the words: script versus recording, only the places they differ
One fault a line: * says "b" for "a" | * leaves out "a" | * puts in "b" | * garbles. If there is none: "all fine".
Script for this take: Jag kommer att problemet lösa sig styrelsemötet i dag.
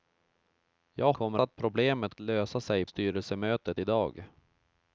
all fine